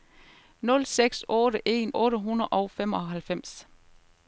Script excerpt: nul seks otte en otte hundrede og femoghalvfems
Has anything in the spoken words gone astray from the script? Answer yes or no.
no